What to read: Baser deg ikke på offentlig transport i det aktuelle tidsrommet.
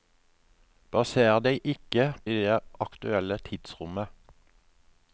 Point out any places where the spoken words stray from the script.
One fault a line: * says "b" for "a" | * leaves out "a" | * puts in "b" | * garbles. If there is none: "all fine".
* leaves out "på offentlig transport"